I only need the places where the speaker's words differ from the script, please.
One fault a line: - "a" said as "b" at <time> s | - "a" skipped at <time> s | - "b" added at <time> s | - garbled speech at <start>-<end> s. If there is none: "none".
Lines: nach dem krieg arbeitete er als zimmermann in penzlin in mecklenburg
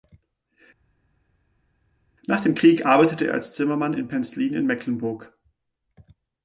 none